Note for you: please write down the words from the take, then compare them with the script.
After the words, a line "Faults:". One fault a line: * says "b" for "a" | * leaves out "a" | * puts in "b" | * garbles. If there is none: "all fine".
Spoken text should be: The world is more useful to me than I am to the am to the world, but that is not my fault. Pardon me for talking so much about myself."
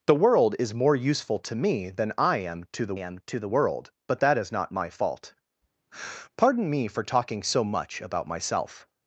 The world is more useful to me than I am to the am to the world, but that is not my fault. Pardon me for talking so much about myself."
Faults:
all fine